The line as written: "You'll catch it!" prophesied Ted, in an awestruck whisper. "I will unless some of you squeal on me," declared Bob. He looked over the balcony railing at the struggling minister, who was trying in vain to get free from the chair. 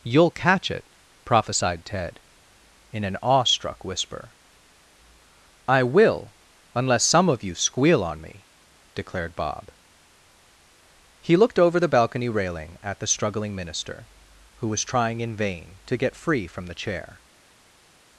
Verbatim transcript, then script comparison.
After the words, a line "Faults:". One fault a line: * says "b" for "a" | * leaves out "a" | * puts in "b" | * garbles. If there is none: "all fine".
"You'll catch it!" prophesied Ted, in an awestruck whisper. "I will unless some of you squeal on me," declared Bob. He looked over the balcony railing at the struggling minister, who was trying in vain to get free from the chair.
Faults:
all fine